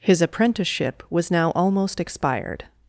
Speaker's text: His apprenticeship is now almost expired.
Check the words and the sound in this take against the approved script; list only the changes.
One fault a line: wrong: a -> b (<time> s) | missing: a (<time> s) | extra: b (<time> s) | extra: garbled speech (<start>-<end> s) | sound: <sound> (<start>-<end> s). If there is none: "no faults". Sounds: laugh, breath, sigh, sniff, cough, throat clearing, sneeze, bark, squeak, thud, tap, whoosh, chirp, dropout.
wrong: is -> was (1.1 s)